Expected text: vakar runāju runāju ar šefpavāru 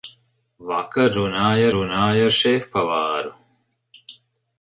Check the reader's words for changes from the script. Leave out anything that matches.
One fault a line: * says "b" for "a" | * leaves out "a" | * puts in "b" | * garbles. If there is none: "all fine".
all fine